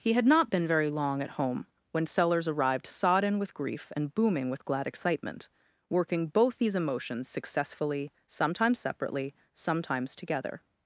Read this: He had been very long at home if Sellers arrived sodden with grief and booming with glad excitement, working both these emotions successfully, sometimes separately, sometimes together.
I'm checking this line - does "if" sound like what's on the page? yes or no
no